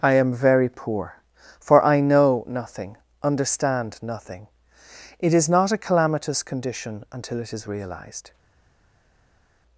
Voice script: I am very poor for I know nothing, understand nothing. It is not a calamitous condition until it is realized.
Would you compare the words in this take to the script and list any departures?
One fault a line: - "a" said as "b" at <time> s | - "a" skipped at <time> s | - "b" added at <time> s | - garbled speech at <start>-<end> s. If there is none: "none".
none